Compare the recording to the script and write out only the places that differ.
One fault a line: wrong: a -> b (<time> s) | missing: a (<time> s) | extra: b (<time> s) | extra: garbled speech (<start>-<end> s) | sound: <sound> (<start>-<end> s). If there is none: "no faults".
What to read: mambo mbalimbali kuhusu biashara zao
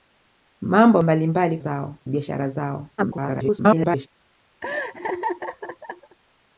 wrong: kuhusu -> zao (1.6 s)
extra: garbled speech (3.0-4.1 s)
sound: laugh (4.6-6.2 s)